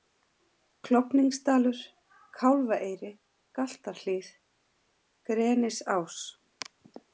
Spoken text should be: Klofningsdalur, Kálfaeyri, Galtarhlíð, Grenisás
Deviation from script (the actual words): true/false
false